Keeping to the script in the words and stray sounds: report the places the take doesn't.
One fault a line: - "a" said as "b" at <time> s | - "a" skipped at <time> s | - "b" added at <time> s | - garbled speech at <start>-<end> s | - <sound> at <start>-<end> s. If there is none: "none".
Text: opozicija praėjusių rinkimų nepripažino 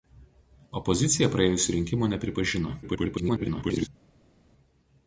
- garbled speech at 2.8-3.9 s